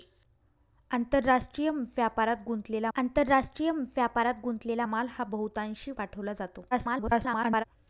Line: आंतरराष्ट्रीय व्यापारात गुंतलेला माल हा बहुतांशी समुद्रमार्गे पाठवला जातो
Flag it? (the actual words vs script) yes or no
yes